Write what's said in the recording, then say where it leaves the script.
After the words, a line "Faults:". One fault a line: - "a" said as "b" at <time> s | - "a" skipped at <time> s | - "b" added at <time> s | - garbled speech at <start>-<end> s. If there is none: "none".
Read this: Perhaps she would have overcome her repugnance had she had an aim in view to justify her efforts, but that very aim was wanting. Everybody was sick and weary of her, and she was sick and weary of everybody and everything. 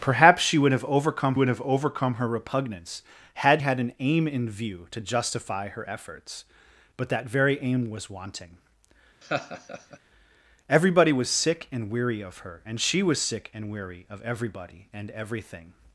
Perhaps she would have overcome would have overcome her repugnance had had an aim in view to justify her efforts, but that very aim was wanting. Everybody was sick and weary of her, and she was sick and weary of everybody and everything.
Faults:
- "would have overcome" added at 1.3 s
- "she" skipped at 3.6 s